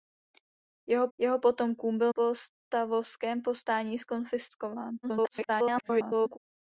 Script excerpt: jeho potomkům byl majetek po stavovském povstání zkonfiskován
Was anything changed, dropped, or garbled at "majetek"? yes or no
yes